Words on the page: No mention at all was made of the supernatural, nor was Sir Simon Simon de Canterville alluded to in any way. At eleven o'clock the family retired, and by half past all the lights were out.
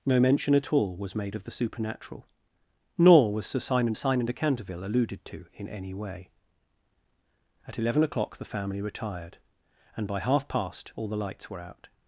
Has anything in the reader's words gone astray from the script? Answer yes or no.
no